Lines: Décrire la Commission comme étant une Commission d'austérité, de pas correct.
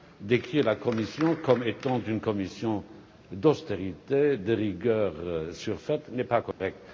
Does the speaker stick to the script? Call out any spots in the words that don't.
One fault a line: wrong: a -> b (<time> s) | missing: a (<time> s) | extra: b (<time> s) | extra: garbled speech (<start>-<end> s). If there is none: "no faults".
extra: rigueur surfaite n'est (4.5 s)